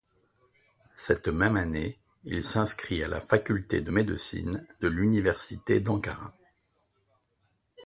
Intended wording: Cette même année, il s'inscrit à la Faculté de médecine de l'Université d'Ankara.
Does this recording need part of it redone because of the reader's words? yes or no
no